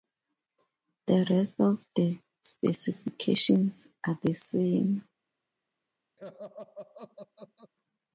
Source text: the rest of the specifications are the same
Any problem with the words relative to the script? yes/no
no